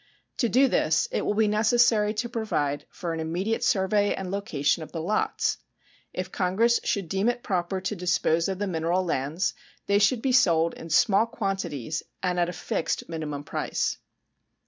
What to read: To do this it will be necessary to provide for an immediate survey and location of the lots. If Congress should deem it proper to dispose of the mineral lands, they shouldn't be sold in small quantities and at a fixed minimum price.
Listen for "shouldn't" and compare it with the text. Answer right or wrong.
wrong